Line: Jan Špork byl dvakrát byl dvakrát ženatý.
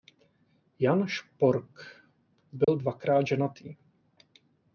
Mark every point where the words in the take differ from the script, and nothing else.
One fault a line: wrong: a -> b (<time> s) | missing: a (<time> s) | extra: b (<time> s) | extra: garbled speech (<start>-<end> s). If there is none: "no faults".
missing: byl dvakrát (3.3 s)